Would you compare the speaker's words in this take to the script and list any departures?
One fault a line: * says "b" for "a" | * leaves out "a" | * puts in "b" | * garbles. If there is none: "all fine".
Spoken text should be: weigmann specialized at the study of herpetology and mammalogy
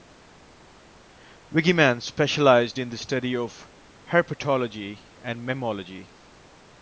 * says "in" for "at"